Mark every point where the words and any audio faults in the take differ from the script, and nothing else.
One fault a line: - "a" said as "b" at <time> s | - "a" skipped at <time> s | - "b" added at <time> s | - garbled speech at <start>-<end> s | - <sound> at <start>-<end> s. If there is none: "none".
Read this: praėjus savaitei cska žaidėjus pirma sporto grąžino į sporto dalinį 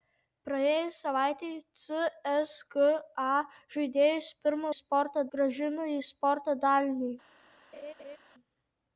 - laugh at 7.7-8.2 s